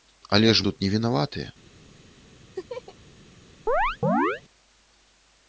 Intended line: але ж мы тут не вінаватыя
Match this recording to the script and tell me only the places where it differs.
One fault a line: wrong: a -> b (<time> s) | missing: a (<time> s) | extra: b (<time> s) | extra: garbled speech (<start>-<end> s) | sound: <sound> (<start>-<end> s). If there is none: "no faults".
missing: мы (0.7 s)
sound: laugh (2.5-2.9 s)
sound: chirp (3.7-4.4 s)